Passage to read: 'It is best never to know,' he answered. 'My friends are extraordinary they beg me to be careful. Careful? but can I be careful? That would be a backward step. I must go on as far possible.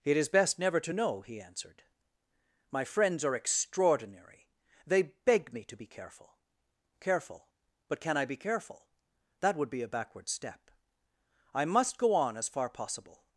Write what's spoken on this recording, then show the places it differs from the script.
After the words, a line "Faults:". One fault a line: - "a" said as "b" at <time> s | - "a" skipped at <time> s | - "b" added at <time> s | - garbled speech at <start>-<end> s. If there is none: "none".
'It is best never to know,' he answered. 'My friends are extraordinary they beg me to be careful. Careful? but can I be careful? That would be a backward step. I must go on as far possible.
Faults:
none